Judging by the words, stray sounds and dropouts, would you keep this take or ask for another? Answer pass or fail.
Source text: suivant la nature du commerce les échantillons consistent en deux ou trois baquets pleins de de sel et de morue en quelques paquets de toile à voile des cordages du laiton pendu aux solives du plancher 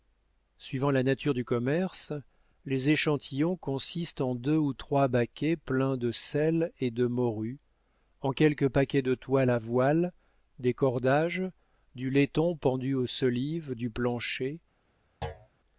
fail